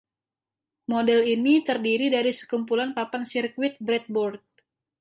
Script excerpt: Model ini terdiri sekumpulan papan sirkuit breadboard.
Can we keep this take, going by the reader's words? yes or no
no